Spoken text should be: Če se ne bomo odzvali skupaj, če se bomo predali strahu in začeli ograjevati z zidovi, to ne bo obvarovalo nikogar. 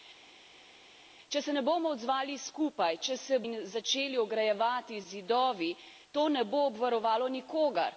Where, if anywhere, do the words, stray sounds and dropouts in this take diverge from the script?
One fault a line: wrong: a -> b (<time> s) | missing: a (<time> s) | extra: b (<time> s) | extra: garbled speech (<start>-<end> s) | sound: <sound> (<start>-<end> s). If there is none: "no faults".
missing: bomo predali strahu (3.4 s)